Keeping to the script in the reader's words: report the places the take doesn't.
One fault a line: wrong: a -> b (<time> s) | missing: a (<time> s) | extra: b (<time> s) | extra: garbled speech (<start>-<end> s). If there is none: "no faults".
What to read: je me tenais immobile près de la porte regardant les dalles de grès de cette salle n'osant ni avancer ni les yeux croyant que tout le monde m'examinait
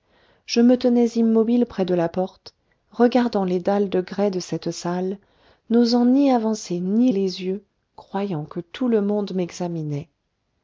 no faults